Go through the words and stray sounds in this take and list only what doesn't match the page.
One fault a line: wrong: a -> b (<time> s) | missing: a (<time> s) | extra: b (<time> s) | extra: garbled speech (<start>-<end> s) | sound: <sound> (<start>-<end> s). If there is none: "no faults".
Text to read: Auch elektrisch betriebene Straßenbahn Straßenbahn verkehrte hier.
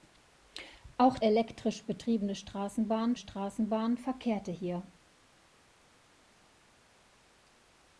no faults